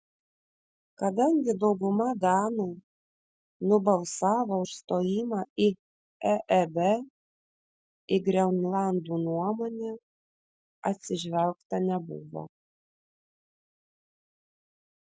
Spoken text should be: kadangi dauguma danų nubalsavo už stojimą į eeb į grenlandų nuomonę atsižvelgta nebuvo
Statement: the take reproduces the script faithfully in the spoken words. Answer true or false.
true